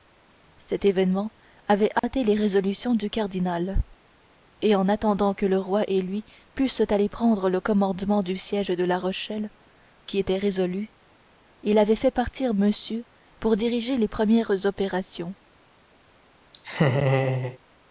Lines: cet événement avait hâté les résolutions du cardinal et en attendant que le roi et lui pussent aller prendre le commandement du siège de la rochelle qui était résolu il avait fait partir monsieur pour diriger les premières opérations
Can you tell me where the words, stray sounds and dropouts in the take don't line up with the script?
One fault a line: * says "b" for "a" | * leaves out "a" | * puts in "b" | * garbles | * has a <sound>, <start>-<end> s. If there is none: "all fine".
* has a dropout, 2.0-2.0 s
* has a laugh, 16.5-17.6 s